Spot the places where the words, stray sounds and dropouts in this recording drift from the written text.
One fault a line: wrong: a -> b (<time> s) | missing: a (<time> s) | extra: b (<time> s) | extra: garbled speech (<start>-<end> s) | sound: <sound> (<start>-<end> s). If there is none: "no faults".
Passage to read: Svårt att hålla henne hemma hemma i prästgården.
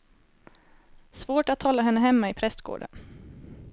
missing: hemma (2.3 s)